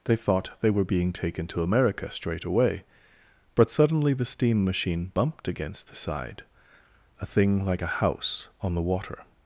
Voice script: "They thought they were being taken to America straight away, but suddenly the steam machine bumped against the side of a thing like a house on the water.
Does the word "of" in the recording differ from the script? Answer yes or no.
yes